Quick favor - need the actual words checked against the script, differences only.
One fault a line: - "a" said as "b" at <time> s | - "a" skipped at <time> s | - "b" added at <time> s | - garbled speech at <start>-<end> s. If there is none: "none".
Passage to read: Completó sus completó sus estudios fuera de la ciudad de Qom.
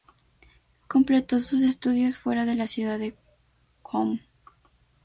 - "completó sus" skipped at 1.6 s